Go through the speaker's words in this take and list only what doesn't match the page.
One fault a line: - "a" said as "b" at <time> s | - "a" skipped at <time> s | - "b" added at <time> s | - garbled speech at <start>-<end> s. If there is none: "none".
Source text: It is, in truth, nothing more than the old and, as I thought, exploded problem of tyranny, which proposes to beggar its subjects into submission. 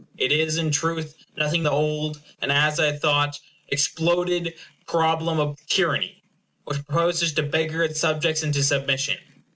- "more than" skipped at 1.7 s